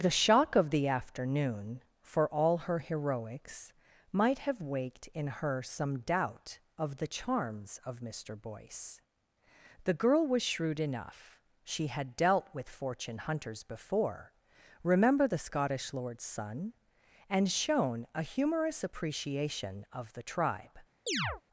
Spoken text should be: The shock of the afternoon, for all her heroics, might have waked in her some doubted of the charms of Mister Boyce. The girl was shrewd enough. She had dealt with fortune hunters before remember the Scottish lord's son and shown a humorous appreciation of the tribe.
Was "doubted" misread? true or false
true